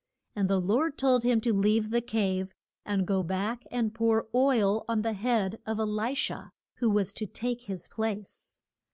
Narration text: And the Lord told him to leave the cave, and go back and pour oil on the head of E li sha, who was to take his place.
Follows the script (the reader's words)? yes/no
yes